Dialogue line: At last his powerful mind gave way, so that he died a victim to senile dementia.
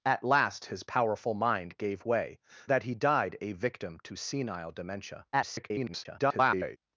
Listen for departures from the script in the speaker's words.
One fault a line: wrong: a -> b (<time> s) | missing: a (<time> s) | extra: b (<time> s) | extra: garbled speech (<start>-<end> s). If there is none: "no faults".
missing: so (2.4 s)
extra: garbled speech (5.3-6.8 s)